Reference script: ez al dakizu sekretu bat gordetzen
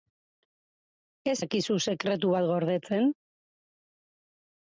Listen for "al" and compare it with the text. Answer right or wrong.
wrong